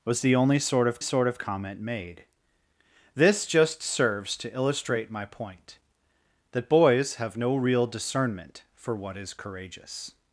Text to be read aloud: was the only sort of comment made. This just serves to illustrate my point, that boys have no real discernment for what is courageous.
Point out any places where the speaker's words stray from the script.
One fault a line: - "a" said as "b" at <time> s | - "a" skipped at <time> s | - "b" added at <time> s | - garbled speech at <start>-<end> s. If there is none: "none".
- "sort of" added at 1.0 s